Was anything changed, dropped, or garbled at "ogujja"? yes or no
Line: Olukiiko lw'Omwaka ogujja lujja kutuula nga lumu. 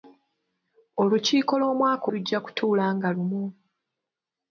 yes